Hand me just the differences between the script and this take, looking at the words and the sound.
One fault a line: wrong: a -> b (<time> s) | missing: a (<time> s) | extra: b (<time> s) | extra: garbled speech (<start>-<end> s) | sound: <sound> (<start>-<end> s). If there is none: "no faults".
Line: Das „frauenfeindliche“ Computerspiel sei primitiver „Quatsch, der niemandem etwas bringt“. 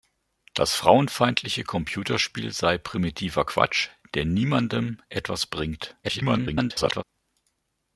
extra: garbled speech (6.0-7.0 s)